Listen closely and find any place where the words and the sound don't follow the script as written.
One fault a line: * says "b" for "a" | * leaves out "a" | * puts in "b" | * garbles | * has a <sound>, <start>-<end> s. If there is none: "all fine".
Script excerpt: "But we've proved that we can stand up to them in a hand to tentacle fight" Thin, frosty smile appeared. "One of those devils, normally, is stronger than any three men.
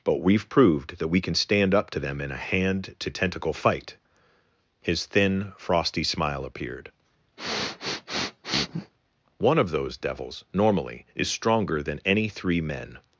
* puts in "His"
* has a sniff, 7.4-8.9 s